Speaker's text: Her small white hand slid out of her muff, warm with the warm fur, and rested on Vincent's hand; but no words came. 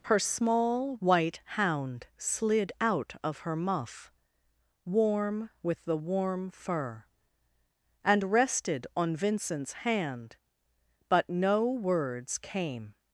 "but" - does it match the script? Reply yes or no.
yes